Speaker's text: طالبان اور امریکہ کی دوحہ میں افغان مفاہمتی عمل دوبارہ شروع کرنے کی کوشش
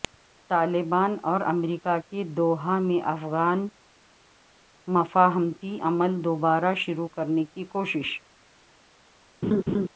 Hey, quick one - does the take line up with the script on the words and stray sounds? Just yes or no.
no